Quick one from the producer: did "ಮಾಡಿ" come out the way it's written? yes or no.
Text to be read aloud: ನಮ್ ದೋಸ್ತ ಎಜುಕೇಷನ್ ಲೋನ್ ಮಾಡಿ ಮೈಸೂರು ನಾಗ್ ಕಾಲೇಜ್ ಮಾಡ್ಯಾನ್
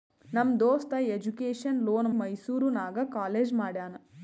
no